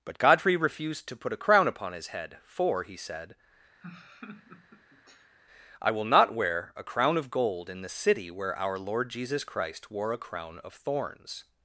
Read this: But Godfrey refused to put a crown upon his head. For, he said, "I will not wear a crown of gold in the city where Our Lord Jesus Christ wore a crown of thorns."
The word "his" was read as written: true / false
true